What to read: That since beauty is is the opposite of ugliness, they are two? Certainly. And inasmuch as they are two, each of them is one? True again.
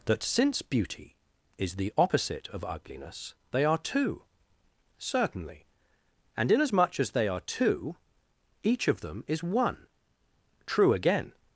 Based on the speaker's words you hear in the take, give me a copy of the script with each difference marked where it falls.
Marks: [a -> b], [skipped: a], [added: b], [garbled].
That since beauty is [skipped: is] the opposite of ugliness, they are two? Certainly. And inasmuch as they are two, each of them is one? True again.